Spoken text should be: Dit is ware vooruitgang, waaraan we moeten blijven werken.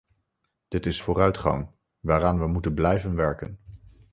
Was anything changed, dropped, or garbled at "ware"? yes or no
yes